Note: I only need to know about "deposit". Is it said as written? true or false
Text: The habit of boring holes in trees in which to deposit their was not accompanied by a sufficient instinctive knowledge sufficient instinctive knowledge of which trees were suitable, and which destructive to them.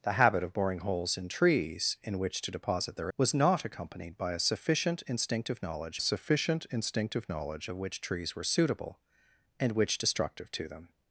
true